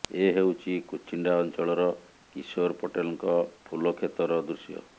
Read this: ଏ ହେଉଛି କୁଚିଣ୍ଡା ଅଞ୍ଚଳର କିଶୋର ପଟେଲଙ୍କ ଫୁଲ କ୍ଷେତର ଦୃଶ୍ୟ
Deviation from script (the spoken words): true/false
false